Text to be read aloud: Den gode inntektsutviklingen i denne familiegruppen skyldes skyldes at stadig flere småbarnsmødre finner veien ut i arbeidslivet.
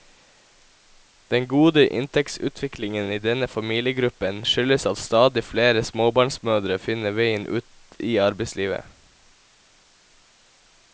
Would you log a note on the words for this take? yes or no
yes